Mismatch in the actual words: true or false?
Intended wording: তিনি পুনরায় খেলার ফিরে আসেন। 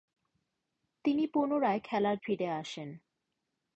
false